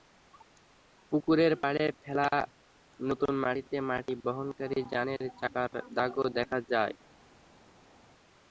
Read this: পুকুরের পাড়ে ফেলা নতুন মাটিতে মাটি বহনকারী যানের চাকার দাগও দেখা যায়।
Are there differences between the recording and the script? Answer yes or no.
no